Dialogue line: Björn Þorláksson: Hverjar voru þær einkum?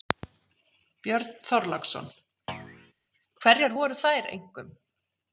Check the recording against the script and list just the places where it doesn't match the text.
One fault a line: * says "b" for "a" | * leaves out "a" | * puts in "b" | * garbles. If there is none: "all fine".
all fine